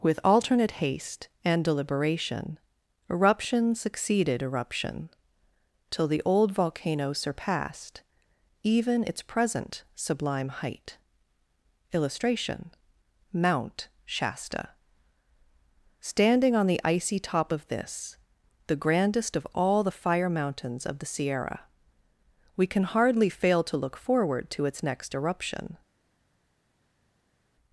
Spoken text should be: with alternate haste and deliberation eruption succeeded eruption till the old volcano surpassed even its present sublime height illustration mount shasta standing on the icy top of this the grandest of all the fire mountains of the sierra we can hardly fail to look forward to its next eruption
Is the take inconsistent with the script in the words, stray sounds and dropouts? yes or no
no